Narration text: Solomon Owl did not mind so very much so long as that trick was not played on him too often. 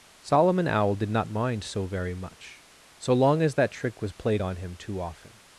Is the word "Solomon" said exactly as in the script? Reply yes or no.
yes